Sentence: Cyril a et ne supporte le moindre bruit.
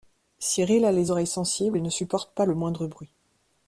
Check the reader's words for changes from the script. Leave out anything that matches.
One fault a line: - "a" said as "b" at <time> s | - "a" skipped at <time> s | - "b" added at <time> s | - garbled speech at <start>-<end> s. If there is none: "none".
- "les oreilles sensibles" added at 0.9 s
- "pas" added at 2.3 s